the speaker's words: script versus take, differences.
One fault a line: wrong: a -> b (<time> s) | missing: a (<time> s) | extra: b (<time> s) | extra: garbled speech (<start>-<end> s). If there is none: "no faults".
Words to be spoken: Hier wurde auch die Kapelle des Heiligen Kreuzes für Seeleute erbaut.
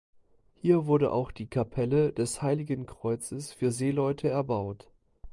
no faults